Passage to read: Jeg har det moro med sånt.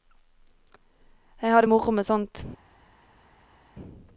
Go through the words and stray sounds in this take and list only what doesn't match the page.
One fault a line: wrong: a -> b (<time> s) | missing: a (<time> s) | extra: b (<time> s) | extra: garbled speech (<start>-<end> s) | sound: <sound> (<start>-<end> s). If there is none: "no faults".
no faults